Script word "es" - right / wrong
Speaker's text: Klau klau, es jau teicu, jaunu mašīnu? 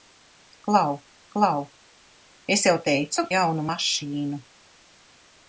right